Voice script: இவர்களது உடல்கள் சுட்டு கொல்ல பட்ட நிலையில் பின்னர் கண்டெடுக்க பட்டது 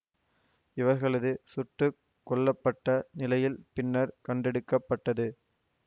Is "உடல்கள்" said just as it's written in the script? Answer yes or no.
no